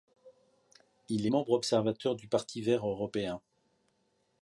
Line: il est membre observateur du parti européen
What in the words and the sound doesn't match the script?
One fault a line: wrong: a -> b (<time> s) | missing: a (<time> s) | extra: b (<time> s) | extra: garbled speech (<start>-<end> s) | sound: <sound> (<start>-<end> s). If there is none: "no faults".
extra: vert (2.6 s)